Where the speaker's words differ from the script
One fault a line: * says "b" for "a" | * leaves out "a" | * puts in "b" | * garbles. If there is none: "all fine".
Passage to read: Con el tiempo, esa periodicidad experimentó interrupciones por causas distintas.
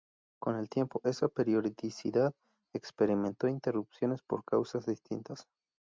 all fine